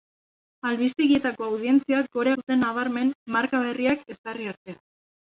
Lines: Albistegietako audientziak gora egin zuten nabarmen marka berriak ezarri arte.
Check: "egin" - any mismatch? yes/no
yes